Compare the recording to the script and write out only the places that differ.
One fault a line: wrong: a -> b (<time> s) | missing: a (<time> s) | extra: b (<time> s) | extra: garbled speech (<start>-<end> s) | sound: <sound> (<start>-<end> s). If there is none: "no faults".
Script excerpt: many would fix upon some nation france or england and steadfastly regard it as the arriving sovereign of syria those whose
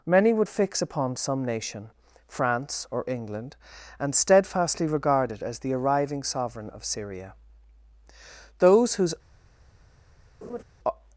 sound: laugh (10.4-10.6 s)